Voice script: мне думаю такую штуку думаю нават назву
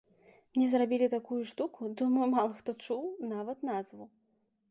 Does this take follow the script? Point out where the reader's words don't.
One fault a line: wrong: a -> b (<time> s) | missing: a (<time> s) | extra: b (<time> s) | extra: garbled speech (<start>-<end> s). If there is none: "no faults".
wrong: думаю -> зрабілі (0.7 s)
extra: мала хто чуў (2.3 s)